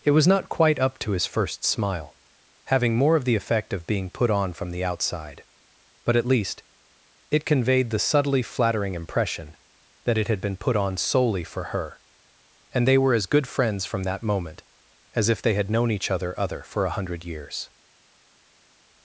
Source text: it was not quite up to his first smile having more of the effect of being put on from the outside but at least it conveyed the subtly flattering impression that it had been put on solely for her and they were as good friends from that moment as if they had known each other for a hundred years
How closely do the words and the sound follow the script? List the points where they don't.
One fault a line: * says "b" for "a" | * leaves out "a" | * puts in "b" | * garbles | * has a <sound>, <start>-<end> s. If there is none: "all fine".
* puts in "other"